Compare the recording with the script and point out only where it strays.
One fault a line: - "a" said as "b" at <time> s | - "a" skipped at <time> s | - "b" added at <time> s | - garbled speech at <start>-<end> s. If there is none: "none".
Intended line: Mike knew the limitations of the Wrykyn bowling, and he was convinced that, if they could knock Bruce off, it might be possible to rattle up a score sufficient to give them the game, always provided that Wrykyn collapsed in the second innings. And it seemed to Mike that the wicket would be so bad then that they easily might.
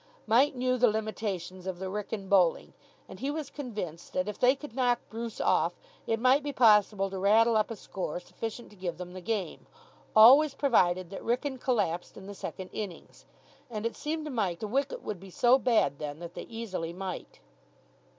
- "that" skipped at 14.6 s